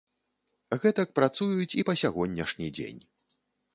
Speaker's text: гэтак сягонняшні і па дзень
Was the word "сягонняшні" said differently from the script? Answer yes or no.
yes